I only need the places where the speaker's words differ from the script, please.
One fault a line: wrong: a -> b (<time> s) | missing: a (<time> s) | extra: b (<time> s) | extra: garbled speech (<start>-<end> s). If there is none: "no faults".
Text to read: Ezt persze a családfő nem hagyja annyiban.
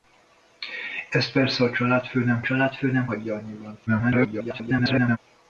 extra: családfő nem (2.4 s)
extra: garbled speech (3.9-5.2 s)